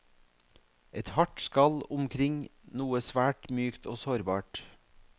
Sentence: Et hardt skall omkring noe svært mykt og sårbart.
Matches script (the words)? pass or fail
pass